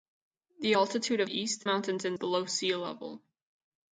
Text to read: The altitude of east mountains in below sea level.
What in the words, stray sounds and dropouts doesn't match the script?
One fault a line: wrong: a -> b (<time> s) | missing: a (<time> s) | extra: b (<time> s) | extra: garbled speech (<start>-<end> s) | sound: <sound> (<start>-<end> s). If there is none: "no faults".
no faults